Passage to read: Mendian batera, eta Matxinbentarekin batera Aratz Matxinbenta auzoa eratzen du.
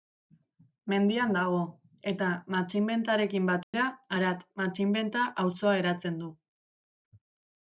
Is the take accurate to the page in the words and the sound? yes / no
no